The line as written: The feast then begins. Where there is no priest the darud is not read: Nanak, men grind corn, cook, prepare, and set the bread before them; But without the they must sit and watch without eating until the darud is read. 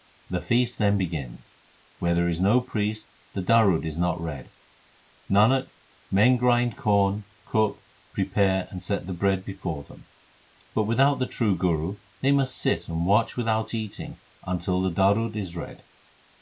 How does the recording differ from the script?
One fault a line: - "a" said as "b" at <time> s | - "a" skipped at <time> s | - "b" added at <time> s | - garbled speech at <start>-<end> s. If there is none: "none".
- "true Guru" added at 11.3 s